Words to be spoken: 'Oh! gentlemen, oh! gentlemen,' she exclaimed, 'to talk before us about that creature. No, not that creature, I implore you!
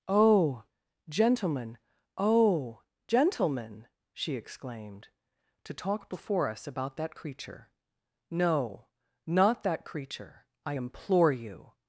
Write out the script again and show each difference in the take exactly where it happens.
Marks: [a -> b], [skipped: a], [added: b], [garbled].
'Oh! gentlemen, oh! gentlemen,' she exclaimed, 'to talk before us about that creature. No, not that creature, I implore you!